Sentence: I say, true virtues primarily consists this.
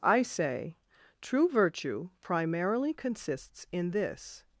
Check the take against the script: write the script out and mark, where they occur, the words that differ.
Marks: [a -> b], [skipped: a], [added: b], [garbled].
I say, true [virtues -> virtue] primarily consists [added: in] this.